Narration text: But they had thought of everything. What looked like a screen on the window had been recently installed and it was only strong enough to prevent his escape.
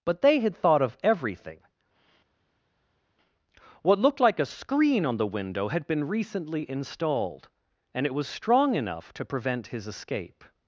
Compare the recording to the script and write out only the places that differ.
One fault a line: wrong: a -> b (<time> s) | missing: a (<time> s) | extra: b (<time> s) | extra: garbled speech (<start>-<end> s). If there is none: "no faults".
missing: only (8.3 s)